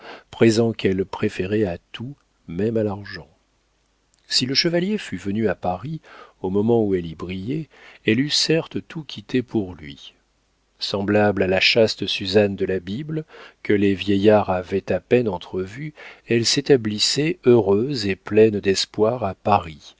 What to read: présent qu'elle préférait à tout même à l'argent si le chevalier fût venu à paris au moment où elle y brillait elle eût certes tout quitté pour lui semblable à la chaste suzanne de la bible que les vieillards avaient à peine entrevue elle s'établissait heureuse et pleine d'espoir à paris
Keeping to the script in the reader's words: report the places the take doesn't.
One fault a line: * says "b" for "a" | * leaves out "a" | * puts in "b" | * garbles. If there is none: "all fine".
all fine